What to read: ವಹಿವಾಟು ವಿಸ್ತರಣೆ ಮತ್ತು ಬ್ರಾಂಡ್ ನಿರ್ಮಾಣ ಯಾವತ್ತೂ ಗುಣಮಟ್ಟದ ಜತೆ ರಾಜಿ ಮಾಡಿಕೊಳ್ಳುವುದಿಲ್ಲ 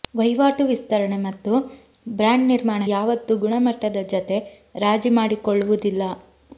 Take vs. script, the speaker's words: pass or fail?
pass